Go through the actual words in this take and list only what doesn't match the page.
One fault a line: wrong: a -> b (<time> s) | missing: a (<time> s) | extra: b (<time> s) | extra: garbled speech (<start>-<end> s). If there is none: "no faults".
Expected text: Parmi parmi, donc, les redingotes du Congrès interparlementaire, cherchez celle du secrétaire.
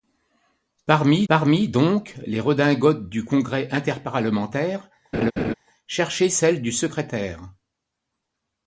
no faults